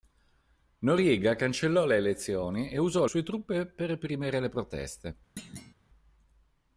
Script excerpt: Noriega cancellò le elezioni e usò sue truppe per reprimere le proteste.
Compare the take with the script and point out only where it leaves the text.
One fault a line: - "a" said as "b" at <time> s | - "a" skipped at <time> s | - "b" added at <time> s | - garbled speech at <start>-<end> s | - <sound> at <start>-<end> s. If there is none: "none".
- thud at 5.4-5.7 s